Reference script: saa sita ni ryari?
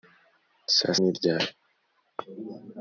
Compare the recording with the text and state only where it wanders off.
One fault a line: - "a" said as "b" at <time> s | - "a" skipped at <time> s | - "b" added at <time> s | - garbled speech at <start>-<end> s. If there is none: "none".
- "sita" skipped at 0.9 s